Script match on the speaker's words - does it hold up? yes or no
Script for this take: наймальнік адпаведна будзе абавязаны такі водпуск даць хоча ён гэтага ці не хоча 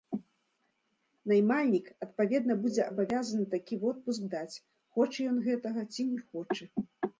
yes